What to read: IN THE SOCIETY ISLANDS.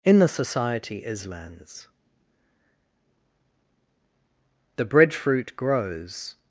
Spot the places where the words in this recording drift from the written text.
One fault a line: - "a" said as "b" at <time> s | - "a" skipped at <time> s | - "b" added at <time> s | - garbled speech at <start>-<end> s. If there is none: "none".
- "The breadfruit grows" added at 4.8 s